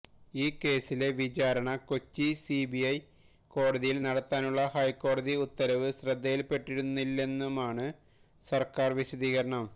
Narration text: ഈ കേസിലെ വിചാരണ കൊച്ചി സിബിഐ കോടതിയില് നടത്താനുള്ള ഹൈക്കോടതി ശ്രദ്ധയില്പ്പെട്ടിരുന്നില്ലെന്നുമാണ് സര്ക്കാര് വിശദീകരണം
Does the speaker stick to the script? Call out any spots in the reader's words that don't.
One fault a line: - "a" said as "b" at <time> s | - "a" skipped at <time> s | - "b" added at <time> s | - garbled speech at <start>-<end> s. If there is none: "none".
- "ഉത്തരവ്" added at 5.5 s